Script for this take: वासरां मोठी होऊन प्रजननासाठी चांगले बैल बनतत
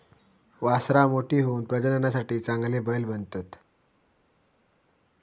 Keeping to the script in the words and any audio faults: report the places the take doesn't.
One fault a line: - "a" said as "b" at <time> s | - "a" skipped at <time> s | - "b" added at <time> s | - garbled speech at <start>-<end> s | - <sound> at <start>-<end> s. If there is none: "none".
none